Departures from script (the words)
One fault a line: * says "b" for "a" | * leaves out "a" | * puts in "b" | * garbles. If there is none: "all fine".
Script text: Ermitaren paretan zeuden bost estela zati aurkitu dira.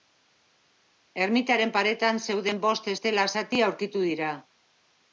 all fine